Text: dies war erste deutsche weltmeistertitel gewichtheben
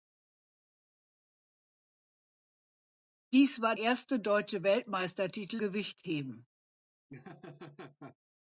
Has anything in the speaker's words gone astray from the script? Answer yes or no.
no